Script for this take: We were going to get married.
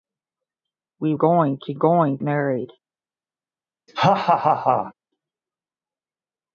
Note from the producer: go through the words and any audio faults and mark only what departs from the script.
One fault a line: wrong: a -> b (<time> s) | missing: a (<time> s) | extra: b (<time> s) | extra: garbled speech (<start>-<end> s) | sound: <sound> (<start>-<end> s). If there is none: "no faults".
missing: were (1.1 s)
wrong: get -> going (1.7 s)
sound: laugh (3.9-4.9 s)